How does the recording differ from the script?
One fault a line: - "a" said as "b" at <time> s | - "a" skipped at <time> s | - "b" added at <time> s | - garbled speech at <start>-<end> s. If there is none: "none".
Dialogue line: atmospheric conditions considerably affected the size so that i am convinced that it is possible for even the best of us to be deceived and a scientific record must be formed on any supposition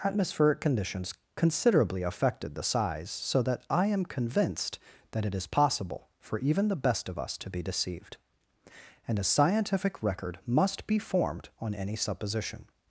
none